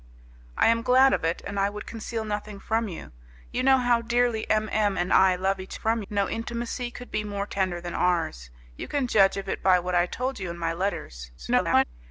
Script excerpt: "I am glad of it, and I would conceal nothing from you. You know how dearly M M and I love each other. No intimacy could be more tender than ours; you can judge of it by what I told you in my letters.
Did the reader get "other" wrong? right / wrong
wrong